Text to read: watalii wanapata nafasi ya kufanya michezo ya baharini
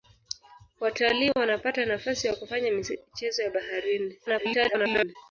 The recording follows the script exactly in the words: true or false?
false